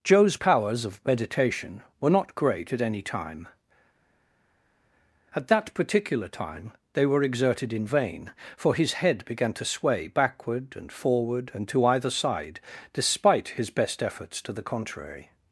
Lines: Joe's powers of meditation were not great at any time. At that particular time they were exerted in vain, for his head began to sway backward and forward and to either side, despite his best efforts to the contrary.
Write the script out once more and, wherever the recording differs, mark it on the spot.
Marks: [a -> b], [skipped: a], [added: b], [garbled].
Joe's powers of meditation were not great at any time. At that particular time they were exerted in vain, for his head began to sway backward and forward and to either side, despite his best efforts to the contrary.